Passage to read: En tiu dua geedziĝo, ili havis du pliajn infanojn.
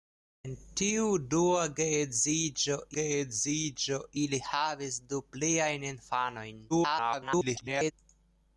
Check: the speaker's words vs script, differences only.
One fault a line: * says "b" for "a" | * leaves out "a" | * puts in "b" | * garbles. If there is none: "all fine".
* puts in "geedziĝo"
* garbles